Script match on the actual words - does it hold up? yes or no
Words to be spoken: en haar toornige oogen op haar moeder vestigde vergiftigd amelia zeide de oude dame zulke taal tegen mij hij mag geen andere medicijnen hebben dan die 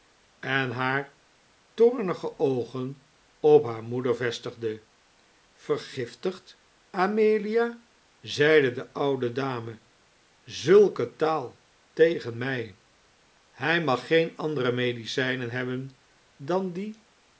yes